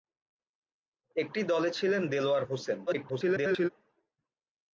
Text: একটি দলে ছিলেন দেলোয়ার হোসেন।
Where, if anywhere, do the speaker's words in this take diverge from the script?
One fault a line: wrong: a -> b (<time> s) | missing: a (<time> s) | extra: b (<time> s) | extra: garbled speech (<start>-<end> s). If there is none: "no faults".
extra: garbled speech (2.9-3.7 s)